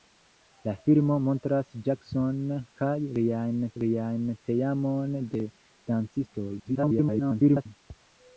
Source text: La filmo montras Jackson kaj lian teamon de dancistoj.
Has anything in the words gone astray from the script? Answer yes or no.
yes